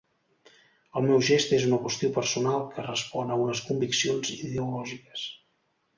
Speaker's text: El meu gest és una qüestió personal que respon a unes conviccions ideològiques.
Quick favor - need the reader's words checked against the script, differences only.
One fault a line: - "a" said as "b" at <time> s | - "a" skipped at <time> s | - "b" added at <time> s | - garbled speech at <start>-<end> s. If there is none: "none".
none